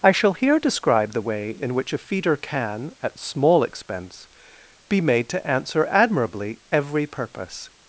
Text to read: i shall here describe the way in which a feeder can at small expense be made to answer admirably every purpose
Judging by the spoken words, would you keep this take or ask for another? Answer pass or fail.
pass